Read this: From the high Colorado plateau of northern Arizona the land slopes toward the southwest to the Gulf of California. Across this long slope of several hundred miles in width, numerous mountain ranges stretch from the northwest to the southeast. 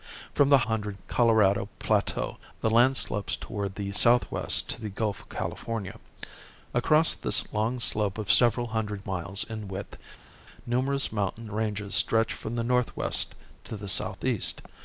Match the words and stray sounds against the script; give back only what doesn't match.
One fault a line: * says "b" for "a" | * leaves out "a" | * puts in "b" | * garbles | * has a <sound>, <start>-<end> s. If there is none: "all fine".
* says "hundred" for "high"
* leaves out "of northern Arizona"